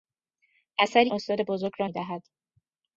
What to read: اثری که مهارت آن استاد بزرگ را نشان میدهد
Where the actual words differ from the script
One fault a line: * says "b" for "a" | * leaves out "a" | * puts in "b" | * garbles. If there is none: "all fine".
* leaves out "که مهارت آن"
* leaves out "نشان"